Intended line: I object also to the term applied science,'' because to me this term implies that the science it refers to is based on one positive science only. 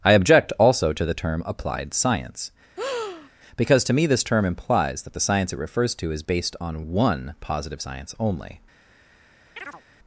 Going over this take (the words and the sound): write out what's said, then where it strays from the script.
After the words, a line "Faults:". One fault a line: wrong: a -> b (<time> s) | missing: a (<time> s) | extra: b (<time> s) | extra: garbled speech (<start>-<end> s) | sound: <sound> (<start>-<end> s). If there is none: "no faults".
I object also to the term applied science,'' because to me this term implies that the science it refers to is based on one positive science only.
Faults:
sound: breath (2.8-3.3 s)
sound: chirp (9.6-9.8 s)